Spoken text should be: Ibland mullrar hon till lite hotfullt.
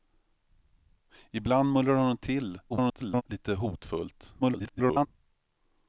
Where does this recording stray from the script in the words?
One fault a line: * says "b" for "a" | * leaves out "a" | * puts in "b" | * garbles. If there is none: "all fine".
* garbles
* garbles